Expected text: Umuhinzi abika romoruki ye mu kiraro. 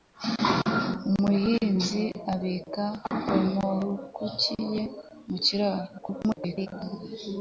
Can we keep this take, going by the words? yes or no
no